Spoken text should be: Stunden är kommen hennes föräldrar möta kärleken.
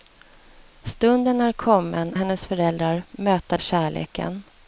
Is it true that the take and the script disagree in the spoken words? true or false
false